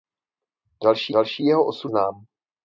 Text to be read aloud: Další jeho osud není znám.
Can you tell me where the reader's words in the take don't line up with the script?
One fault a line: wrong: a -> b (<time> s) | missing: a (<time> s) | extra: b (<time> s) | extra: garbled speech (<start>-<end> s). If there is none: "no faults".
extra: další (1.1 s)
missing: není (1.9 s)